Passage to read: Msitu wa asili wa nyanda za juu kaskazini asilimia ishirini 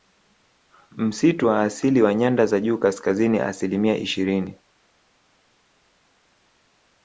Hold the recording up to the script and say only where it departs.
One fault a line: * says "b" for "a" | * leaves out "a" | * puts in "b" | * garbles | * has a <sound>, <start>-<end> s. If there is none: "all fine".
all fine